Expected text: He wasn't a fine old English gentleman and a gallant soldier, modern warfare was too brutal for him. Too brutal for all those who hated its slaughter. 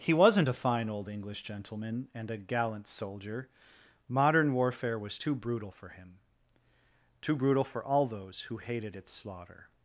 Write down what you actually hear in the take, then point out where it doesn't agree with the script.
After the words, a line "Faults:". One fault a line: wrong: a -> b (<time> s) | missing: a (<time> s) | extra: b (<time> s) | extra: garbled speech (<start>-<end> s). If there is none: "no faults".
He wasn't a fine old English gentleman and a gallant soldier, modern warfare was too brutal for him. Too brutal for all those who hated its slaughter.
Faults:
no faults